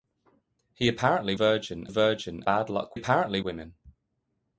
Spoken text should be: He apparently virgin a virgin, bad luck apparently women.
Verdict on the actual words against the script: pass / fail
pass